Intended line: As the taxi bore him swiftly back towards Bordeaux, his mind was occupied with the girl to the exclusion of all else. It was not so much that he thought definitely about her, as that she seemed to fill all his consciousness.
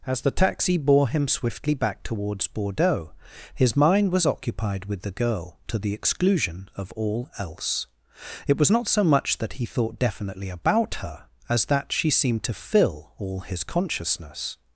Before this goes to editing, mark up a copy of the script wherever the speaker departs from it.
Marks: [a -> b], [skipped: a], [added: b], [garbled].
As the taxi bore him swiftly back towards Bordeaux, his mind was occupied with the girl to the exclusion of all else. It was not so much that he thought definitely about her, as that she seemed to fill all his consciousness.